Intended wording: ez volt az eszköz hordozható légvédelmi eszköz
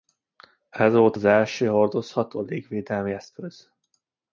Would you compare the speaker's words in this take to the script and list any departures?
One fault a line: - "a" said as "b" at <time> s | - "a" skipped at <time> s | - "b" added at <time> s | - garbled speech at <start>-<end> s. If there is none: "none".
- "eszköz" said as "első" at 1.2 s